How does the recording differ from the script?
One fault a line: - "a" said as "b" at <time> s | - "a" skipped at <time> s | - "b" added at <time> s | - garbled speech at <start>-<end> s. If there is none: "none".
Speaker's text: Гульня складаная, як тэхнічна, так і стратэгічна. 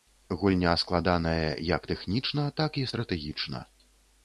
none